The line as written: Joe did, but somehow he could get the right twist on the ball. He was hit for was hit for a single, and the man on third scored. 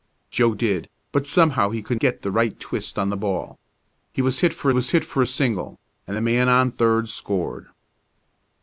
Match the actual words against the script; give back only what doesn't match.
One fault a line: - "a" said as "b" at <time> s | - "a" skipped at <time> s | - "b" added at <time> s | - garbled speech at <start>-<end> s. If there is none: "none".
none